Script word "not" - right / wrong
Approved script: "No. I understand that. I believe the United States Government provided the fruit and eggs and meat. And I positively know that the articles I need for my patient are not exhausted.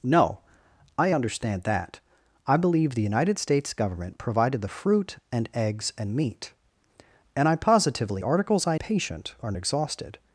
wrong